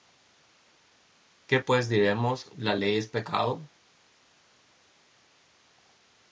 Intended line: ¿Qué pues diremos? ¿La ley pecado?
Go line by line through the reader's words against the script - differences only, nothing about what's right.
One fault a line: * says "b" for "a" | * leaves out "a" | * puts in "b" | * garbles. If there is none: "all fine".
* puts in "es"